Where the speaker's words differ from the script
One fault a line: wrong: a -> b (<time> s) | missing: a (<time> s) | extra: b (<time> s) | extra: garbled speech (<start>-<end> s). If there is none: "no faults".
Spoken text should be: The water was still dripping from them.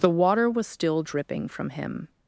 wrong: them -> him (1.7 s)